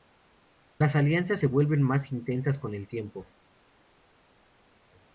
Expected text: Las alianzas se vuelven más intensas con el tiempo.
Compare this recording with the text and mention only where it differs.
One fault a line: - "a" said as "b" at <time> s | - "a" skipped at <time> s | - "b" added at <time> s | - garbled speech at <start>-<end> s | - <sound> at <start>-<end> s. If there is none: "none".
none